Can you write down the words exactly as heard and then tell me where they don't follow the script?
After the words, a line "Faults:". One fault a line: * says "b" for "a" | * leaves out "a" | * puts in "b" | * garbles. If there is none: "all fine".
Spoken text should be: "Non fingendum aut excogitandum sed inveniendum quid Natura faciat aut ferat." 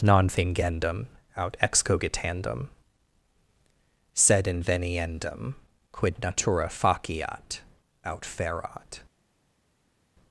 "Non fingendum aut excogitandum sed inveniendum quid Natura faciat aut ferat."
Faults:
all fine